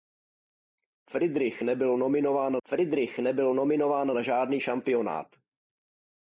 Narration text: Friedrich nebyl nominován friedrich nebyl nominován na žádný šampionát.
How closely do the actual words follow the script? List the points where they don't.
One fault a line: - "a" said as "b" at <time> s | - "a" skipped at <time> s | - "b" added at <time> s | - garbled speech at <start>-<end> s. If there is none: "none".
none